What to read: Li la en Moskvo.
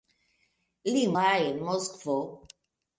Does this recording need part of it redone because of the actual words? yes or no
no